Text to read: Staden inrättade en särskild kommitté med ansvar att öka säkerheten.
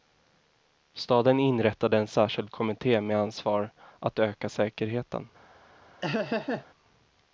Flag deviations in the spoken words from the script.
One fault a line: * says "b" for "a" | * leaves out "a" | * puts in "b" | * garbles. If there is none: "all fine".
all fine